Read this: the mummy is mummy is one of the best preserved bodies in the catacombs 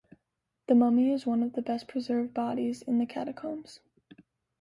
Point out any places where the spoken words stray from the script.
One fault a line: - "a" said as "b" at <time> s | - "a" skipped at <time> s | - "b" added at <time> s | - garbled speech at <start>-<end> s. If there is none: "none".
- "mummy is" skipped at 1.3 s